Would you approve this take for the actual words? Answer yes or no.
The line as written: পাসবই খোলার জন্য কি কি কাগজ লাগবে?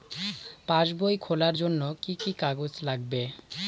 yes